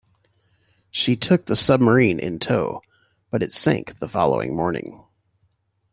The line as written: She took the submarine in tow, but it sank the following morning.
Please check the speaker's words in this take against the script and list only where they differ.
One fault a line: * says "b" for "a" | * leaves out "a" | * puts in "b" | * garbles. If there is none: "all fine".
all fine